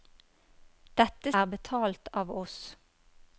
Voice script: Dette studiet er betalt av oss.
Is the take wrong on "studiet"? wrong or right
wrong